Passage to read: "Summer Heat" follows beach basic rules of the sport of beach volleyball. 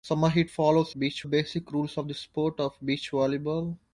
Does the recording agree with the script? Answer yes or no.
yes